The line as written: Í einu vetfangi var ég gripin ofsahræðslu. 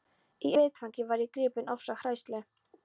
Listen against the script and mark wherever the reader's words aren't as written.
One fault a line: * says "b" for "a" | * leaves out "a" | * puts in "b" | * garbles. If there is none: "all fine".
* leaves out "einu"